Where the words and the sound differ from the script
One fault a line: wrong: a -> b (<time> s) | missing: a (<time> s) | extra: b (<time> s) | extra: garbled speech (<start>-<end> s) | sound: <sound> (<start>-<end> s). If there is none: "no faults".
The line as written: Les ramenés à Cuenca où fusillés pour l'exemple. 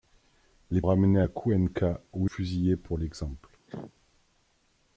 sound: cough (3.7-3.9 s)